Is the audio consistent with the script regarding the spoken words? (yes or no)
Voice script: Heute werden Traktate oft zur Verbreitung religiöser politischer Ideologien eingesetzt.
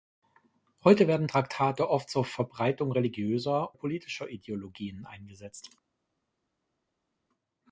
yes